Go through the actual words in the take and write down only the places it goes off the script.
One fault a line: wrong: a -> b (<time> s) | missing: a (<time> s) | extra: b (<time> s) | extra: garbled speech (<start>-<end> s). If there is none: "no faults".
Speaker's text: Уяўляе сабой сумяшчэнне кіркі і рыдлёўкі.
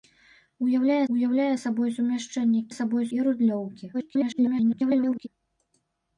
extra: уяўляе (1.2 s)
wrong: кіркі -> сабой (2.8 s)
extra: garbled speech (3.9-5.3 s)